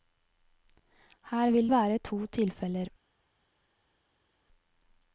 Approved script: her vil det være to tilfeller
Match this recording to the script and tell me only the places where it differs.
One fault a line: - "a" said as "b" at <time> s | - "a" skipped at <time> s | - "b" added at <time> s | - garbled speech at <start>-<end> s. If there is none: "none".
- "det" skipped at 1.7 s